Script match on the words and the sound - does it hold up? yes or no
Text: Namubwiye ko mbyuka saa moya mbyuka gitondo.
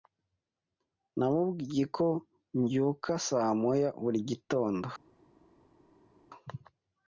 no